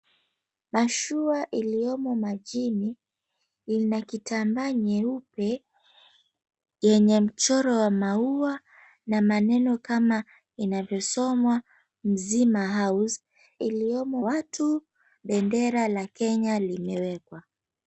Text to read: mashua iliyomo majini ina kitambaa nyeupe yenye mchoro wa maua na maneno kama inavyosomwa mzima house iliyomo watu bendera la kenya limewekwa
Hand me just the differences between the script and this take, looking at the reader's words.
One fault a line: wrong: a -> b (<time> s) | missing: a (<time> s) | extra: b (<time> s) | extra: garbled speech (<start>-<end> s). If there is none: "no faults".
no faults